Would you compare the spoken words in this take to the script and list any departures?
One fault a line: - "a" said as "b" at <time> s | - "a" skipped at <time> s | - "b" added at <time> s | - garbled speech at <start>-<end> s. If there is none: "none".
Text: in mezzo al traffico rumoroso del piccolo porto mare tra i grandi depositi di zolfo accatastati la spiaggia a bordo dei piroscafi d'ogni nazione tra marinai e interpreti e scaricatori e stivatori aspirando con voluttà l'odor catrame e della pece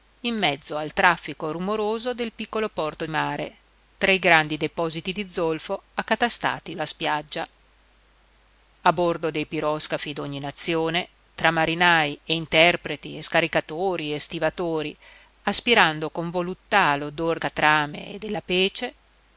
none